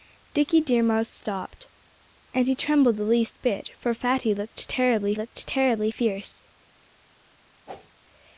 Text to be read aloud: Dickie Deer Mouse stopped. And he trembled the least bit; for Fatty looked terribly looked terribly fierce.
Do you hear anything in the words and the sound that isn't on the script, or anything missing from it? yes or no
yes